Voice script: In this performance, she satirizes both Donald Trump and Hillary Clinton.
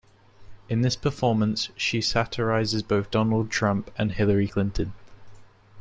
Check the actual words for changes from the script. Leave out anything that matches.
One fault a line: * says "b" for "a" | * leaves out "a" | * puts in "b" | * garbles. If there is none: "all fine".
all fine